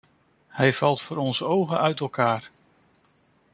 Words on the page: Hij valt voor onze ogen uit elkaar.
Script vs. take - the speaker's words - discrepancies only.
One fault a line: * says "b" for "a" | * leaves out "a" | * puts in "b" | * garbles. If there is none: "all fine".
all fine